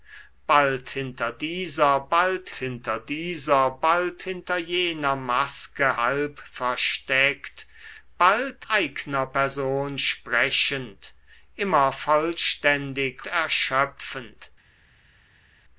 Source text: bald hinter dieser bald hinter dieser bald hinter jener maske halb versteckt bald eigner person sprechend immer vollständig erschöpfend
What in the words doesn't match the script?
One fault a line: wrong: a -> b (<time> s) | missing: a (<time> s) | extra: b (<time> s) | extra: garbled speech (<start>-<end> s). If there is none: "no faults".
no faults